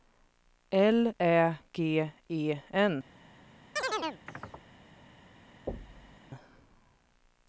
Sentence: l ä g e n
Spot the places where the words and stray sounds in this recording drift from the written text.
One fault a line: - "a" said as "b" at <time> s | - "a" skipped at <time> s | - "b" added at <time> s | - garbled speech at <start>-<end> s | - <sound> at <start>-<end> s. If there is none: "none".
- chirp at 3.8-4.7 s
- thud at 5.7-6.2 s